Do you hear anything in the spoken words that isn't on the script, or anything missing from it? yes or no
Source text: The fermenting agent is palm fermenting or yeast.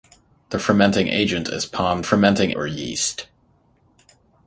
no